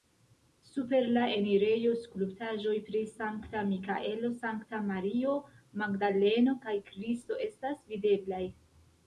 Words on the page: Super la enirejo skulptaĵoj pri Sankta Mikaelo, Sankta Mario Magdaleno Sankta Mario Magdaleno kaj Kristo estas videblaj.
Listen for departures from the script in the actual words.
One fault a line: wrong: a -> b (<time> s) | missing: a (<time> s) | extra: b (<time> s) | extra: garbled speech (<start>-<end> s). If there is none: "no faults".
missing: Sankta Mario Magdaleno (6.6 s)